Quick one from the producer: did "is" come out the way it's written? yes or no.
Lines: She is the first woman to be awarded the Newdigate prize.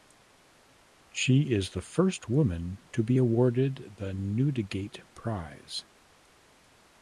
yes